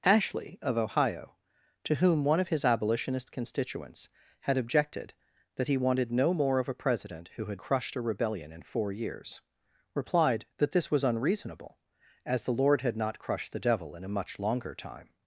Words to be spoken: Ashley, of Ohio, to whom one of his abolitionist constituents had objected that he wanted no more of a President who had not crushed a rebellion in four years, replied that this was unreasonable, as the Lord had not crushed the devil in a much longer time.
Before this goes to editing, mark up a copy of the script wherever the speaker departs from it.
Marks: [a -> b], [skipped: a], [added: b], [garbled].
Ashley, of Ohio, to whom one of his abolitionist constituents had objected that he wanted no more of a President who had [skipped: not] crushed a rebellion in four years, replied that this was unreasonable, as the Lord had not crushed the devil in a much longer time.